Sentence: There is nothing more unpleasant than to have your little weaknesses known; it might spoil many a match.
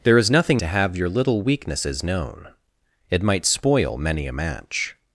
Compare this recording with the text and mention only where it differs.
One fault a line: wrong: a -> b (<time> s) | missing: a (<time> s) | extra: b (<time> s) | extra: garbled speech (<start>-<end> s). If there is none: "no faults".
missing: more unpleasant than (0.6 s)